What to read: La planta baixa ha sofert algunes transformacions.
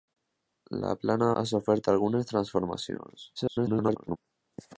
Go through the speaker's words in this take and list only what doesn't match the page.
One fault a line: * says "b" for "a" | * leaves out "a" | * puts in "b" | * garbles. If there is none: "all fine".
* leaves out "baixa"
* garbles